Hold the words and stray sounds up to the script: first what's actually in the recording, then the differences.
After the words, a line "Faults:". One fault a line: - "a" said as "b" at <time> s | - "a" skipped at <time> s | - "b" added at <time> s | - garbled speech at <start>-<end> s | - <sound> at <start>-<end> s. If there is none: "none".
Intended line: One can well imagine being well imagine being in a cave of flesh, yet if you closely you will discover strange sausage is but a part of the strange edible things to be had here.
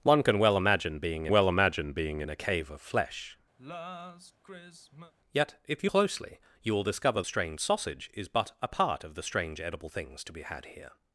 One can well imagine being well imagine being in a cave of flesh, yet if you closely you will discover strange sausage is but a part of the strange edible things to be had here.
Faults:
- sigh at 3.6-5.1 s